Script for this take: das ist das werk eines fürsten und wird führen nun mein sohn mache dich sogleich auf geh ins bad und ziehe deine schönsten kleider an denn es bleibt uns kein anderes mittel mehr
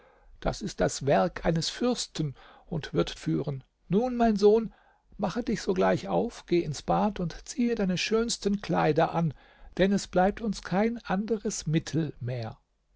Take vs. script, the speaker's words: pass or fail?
pass